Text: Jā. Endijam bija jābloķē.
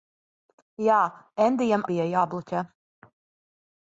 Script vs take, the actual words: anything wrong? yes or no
no